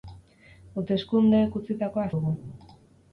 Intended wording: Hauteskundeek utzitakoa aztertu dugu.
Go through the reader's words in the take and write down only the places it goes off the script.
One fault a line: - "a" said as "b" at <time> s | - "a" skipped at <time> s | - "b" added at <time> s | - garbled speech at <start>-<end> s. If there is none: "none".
- "aztertu" skipped at 2.1 s